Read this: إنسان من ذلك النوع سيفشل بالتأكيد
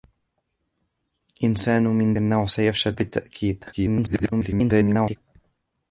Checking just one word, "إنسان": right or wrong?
right